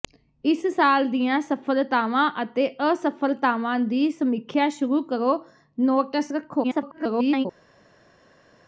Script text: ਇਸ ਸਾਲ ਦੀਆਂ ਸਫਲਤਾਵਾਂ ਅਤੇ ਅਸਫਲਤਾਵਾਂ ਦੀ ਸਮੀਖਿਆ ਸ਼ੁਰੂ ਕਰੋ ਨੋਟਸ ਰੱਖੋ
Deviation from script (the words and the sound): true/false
true